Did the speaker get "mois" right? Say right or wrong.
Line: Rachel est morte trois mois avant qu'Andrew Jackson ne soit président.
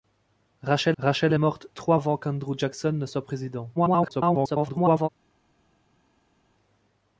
wrong